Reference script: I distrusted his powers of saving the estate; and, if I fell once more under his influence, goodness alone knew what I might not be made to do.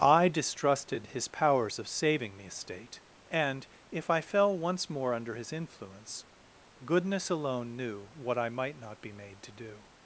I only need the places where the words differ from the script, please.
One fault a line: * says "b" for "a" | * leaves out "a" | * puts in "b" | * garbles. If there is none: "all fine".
all fine